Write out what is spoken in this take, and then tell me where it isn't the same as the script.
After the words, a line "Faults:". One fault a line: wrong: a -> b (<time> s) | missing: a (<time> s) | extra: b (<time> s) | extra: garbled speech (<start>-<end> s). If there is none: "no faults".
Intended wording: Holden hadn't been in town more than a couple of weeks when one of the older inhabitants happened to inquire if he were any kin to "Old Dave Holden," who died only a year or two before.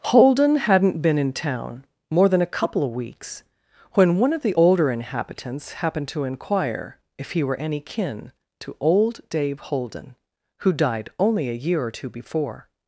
Holden hadn't been in town more than a couple of weeks when one of the older inhabitants happened to inquire if he were any kin to "Old Dave Holden," who died only a year or two before.
Faults:
no faults